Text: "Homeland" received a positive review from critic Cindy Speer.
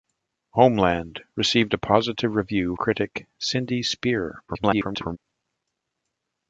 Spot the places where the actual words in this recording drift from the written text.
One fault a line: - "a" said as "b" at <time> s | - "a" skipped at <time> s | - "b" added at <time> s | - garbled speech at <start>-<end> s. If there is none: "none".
- "from" skipped at 2.7 s
- garbled speech at 4.5-5.2 s